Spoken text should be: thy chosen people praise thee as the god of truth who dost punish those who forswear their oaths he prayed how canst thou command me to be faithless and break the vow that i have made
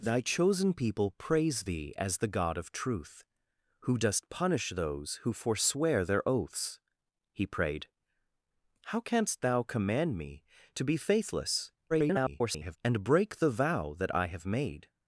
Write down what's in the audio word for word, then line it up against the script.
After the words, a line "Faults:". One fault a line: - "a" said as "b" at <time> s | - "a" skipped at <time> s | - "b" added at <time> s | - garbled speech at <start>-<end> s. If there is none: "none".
thy chosen people praise thee as the god of truth who dost punish those who forswear their oaths he prayed how canst thou command me to be faithless [garbled] and break the vow that i have made
Faults:
- garbled speech at 11.9-12.8 s